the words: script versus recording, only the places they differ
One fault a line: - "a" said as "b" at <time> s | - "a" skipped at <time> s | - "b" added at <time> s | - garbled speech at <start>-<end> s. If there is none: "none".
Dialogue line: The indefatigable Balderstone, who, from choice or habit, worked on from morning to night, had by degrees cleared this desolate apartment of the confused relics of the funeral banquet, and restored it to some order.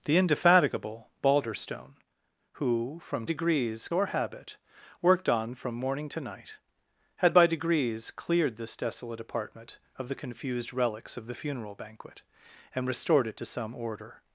- "choice" said as "degrees" at 3.2 s